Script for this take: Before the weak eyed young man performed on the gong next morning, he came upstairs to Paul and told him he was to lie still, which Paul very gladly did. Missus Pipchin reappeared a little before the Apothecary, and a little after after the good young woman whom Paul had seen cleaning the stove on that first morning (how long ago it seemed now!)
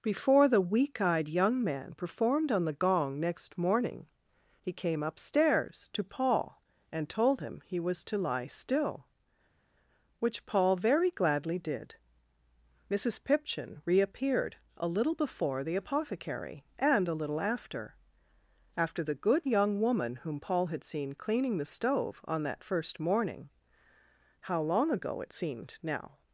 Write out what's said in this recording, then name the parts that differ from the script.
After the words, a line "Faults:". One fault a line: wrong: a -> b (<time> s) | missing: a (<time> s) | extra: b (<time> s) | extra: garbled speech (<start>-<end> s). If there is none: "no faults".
Before the weak eyed young man performed on the gong next morning, he came upstairs to Paul and told him he was to lie still, which Paul very gladly did. Missus Pipchin reappeared a little before the Apothecary, and a little after after the good young woman whom Paul had seen cleaning the stove on that first morning (how long ago it seemed now!)
Faults:
no faults